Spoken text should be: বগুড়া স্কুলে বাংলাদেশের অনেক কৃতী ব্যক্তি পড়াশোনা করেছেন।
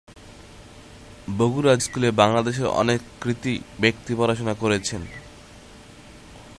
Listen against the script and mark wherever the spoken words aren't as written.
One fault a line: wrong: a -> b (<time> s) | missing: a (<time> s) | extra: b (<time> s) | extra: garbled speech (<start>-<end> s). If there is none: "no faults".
no faults